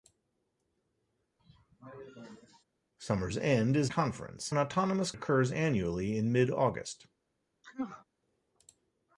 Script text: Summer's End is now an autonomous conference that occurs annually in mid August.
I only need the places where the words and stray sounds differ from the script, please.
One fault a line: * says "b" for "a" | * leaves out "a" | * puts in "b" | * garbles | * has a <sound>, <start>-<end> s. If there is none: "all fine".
* has a cough, 1.4-2.6 s
* says "conference" for "now"
* leaves out "conference that"
* has a sneeze, 7.6-8.1 s